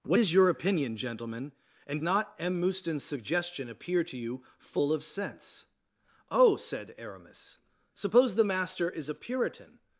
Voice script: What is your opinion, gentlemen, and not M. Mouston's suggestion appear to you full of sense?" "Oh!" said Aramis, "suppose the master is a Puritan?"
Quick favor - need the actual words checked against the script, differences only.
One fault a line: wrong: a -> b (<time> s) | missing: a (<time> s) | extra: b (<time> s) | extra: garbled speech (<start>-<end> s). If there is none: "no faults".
no faults